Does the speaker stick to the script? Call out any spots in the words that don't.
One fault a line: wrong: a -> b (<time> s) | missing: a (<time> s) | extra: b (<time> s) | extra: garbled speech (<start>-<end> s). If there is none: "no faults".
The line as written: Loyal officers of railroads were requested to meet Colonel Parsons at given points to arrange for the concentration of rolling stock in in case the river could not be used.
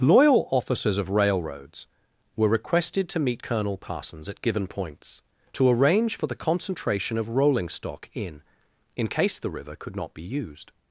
no faults